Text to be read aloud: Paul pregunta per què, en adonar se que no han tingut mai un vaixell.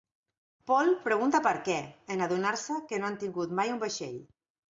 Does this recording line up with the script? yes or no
yes